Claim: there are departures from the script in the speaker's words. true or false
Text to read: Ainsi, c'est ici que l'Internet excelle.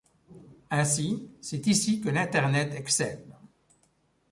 false